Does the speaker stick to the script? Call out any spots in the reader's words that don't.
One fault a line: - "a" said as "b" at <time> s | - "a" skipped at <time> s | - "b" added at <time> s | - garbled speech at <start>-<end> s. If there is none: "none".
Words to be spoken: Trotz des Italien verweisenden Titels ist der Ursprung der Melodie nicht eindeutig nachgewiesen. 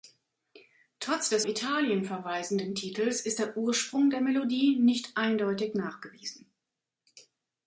none